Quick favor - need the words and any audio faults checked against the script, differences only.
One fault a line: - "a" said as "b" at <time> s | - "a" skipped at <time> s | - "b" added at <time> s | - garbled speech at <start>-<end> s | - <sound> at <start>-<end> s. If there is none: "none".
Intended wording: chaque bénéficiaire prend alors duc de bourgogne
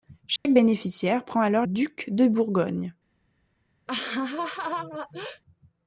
- dropout at 0.4-0.5 s
- laugh at 3.9-5.4 s